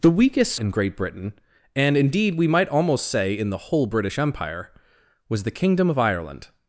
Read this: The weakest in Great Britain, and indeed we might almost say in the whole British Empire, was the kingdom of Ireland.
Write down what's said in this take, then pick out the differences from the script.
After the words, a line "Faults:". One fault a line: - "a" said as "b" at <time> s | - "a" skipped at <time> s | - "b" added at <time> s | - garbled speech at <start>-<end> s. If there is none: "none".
The weakest in Great Britain, and indeed we might almost say in the whole British Empire, was the kingdom of Ireland.
Faults:
none